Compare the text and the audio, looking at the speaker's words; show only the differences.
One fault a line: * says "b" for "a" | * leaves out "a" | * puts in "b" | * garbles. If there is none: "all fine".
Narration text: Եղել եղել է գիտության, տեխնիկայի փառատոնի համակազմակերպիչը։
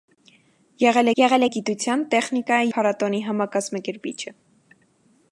all fine